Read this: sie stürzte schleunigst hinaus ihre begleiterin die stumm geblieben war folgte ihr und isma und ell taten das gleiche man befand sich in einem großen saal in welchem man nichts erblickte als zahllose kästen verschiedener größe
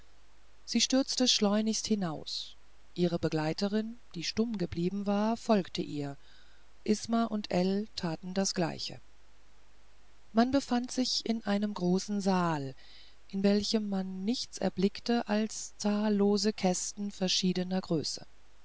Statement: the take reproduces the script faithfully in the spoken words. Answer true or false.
false